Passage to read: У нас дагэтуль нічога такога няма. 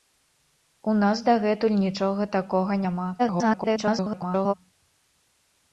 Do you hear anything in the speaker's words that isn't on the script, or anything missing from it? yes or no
yes